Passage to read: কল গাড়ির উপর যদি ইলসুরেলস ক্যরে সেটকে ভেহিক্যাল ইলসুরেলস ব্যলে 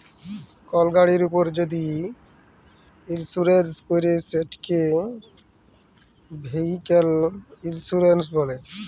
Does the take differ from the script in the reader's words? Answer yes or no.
no